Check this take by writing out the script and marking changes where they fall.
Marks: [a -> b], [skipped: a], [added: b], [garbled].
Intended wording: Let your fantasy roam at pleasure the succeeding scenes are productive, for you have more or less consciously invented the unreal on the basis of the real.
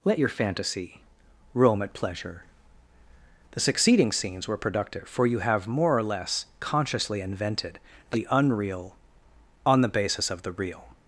Let your fantasy roam at pleasure the succeeding scenes [are -> were] productive, for you have more or less consciously invented the unreal on the basis of the real.